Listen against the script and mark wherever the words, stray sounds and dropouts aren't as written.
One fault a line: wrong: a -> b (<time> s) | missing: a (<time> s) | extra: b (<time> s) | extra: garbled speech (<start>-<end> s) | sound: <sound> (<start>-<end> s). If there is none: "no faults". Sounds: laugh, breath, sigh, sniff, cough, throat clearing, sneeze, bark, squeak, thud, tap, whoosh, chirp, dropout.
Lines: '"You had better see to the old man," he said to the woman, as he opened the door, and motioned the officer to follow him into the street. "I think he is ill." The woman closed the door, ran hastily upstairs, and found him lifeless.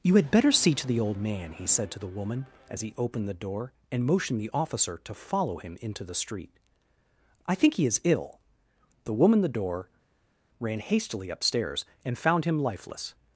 missing: closed (9.4 s)